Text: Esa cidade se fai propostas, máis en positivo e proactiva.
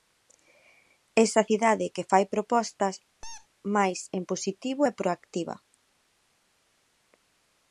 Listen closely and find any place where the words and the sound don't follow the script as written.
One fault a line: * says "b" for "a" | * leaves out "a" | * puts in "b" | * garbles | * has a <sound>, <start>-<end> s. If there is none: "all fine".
* says "que" for "se"
* has a squeak, 3.2-3.5 s